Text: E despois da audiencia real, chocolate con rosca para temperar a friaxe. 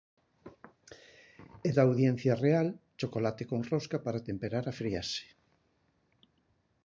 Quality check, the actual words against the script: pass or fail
fail